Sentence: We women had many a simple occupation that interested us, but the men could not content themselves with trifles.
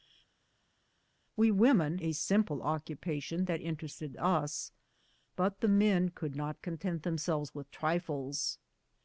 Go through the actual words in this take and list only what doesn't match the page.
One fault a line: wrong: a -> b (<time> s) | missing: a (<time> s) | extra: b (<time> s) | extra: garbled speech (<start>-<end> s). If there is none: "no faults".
missing: had many (2.0 s)